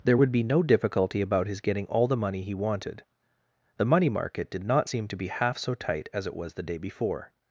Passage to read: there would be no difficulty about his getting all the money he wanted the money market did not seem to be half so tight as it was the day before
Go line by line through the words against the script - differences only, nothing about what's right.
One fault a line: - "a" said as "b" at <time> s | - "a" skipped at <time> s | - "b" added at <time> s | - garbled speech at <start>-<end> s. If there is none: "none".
none